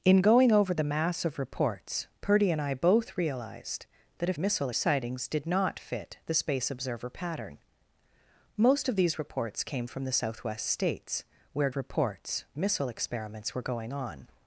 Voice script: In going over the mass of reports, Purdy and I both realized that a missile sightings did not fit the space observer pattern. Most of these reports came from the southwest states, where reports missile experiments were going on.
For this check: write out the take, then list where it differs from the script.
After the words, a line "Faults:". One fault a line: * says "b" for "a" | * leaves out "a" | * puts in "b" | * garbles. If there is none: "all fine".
In going over the mass of reports, Purdy and I both realized that a missile sightings did not fit the space observer pattern. Most of these reports came from the southwest states, where reports missile experiments were going on.
Faults:
all fine